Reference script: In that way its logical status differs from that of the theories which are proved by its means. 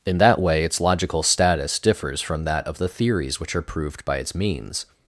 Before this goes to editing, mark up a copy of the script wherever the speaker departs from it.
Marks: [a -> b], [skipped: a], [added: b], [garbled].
In that way its logical status differs from that of the theories which are proved by its means.